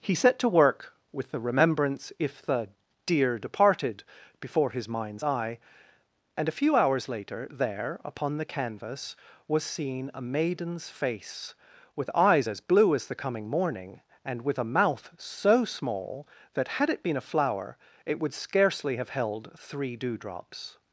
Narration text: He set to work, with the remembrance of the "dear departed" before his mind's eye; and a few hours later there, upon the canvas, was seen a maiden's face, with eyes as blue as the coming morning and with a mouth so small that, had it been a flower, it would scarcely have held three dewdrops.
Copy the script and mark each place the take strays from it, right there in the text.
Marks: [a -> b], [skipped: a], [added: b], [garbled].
He set to work, with the remembrance [of -> if] the "dear departed" before his mind's eye; and a few hours later there, upon the canvas, was seen a maiden's face, with eyes as blue as the coming morning and with a mouth so small that, had it been a flower, it would scarcely have held three dewdrops.